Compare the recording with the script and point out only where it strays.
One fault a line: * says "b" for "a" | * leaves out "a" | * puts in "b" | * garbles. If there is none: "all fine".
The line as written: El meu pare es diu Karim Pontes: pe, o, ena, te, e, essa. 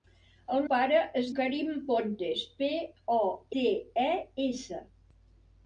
* leaves out "meu"
* leaves out "diu"
* leaves out "ena"